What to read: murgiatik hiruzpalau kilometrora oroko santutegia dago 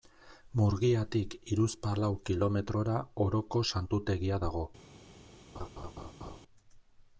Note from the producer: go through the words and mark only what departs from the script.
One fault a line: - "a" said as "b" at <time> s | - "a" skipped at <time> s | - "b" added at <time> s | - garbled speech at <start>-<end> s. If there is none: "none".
none